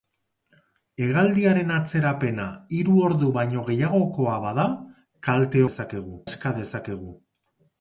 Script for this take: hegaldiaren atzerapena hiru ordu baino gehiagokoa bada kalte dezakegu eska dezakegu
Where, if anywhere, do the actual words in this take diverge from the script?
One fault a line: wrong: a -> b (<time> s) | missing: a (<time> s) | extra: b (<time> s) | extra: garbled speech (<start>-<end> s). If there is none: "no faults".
no faults